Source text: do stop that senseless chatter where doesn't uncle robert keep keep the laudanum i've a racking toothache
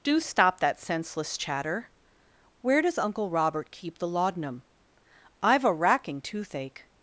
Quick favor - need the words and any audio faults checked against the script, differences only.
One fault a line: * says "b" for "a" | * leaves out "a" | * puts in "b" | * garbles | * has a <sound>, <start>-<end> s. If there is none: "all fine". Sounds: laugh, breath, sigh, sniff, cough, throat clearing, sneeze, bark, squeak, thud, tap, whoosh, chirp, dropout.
* says "does" for "doesn't"
* leaves out "keep"